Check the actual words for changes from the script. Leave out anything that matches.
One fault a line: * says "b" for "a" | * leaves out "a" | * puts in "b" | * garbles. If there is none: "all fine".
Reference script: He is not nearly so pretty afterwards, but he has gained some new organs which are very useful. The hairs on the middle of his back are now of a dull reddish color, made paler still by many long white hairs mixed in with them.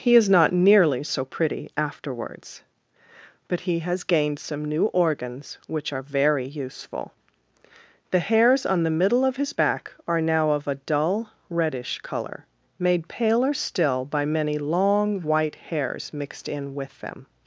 all fine